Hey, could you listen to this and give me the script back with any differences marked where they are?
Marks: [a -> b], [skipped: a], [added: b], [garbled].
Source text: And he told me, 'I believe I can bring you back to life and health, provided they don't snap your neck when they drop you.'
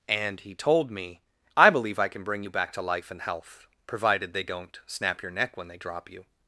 And he told me, 'I believe I can bring you back to life and health, provided they don't snap your neck when they drop you.'